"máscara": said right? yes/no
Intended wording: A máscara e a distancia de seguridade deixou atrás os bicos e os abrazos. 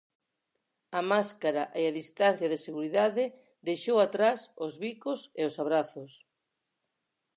yes